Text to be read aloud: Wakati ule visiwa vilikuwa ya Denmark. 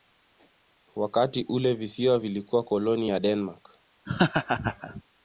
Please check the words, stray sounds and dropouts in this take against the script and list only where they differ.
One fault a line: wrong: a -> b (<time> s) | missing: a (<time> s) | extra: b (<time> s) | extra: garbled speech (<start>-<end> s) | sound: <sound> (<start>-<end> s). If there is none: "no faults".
extra: koloni (2.6 s)
sound: laugh (4.1-5.0 s)